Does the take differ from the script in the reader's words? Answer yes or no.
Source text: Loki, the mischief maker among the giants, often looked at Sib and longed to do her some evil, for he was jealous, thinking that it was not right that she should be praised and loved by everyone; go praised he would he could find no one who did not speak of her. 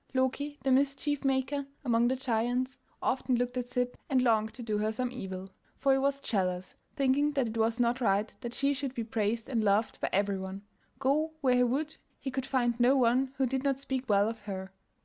yes